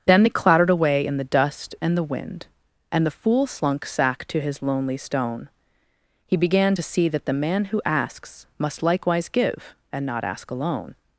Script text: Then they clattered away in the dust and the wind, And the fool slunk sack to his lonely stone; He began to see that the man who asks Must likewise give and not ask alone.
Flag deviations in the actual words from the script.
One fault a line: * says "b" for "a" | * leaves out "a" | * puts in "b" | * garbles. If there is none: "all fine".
all fine